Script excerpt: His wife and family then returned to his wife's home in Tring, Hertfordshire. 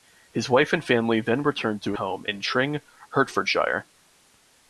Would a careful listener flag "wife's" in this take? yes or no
yes